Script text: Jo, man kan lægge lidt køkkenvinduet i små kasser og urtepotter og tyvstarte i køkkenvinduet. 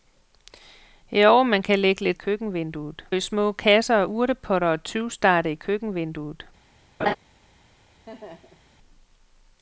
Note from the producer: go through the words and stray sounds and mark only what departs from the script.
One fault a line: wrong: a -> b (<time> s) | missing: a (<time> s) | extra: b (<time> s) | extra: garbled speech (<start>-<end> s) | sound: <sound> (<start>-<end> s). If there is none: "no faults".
sound: laugh (7.0-7.2 s)
sound: laugh (8.1-8.7 s)